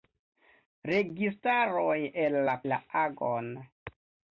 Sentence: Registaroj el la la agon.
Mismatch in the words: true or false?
false